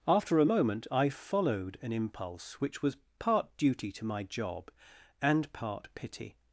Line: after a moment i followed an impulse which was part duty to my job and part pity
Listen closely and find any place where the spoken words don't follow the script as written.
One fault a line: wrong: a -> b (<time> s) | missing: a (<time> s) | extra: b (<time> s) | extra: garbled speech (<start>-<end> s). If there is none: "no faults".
no faults